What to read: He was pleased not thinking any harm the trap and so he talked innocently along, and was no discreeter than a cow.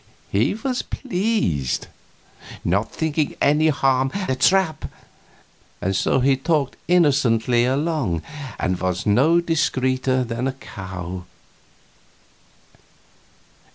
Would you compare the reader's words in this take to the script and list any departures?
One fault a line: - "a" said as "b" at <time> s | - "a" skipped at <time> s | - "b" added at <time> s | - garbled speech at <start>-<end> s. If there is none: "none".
none